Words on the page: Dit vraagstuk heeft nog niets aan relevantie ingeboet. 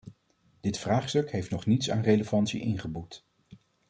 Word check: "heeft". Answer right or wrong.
right